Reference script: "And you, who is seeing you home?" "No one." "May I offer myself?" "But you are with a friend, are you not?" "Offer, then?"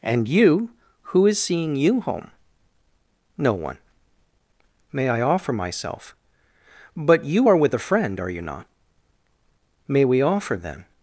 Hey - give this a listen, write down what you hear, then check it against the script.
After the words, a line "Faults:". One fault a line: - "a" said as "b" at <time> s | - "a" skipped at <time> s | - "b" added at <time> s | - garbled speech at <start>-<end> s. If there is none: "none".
"And you, who is seeing you home?" "No one." "May I offer myself?" "But you are with a friend, are you not?" "May we offer, then?"
Faults:
- "May we" added at 9.9 s